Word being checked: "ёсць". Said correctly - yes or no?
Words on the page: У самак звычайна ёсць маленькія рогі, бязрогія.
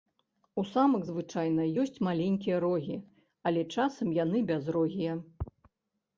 yes